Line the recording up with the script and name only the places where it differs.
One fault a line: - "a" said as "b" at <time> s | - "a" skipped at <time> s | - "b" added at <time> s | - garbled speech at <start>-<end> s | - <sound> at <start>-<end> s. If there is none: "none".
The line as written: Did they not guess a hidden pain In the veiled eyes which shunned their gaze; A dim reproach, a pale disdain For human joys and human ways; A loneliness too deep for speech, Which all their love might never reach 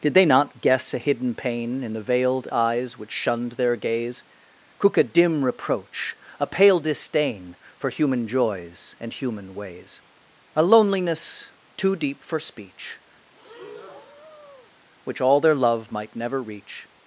- "cook" added at 4.8 s
- breath at 13.3-14.7 s